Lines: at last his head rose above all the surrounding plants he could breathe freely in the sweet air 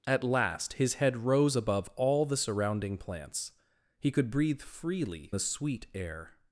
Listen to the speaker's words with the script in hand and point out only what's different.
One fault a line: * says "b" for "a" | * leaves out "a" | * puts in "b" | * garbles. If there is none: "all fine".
* leaves out "in"